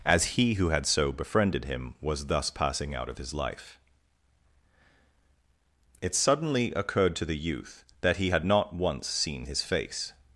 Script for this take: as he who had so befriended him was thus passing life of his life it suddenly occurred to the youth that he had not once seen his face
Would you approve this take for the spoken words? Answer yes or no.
no